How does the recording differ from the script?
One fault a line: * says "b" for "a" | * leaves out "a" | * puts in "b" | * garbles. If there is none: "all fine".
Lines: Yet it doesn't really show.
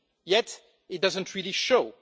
all fine